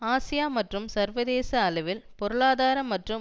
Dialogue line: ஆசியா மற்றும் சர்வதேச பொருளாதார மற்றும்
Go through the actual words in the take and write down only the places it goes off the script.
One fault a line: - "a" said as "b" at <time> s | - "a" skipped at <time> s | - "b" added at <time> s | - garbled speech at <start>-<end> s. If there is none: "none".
- "அளவில்" added at 1.6 s